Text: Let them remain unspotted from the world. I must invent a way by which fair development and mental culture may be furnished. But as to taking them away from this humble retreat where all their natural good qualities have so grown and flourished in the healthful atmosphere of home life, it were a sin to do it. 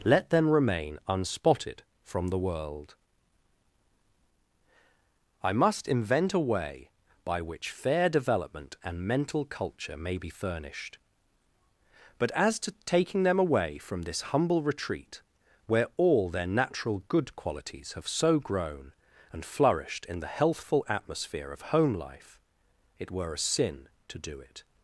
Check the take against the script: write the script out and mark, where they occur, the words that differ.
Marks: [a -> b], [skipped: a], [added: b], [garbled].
Let them remain unspotted from the world. I must invent a way by which fair development and mental culture may be furnished. But as to taking them away from this humble retreat where all their natural good qualities have so grown and flourished in the healthful atmosphere of home life, it were a sin to do it.